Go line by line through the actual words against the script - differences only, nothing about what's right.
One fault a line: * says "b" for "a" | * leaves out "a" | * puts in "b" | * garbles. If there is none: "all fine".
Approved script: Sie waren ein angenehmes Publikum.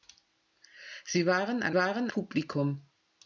* says "waren" for "angenehmes"